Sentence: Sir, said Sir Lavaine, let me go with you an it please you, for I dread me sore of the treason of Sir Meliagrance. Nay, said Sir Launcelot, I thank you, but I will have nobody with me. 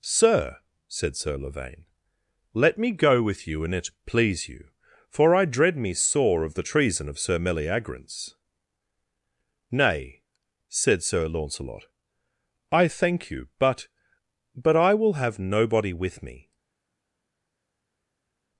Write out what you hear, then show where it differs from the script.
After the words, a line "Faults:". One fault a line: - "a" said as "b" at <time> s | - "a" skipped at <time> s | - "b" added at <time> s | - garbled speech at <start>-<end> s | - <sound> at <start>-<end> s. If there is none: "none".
Sir, said Sir Lavaine, let me go with you an it please you, for I dread me sore of the treason of Sir Meliagrance. Nay, said Sir Launcelot, I thank you, but but I will have nobody with me.
Faults:
- "but" added at 14.5 s